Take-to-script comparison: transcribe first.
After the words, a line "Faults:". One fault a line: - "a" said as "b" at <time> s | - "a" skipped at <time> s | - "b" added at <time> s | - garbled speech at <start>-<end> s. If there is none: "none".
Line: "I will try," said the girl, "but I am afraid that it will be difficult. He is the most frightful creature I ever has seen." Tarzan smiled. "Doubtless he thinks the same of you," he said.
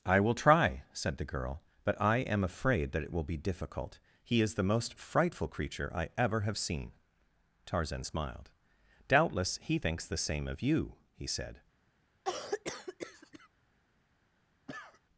"I will try," said the girl, "but I am afraid that it will be difficult. He is the most frightful creature I ever have seen." Tarzan smiled. "Doubtless he thinks the same of you," he said.
Faults:
- "has" said as "have" at 6.4 s